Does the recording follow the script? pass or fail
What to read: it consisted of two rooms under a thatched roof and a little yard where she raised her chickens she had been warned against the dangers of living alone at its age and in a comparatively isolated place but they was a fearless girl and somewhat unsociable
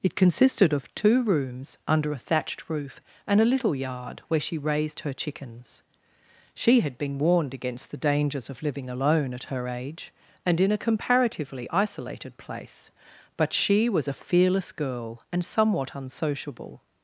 fail